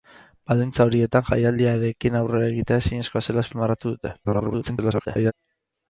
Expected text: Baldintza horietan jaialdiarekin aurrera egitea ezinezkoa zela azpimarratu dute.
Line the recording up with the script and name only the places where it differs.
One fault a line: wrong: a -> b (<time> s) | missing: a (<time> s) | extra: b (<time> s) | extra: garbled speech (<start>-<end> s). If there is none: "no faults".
extra: garbled speech (4.2-5.3 s)